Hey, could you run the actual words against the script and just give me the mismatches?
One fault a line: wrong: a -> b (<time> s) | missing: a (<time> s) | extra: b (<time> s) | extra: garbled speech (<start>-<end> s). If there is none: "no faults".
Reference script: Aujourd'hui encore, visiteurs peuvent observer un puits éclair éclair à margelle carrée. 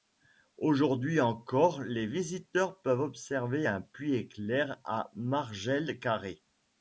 extra: les (1.8 s)
missing: éclair (4.8 s)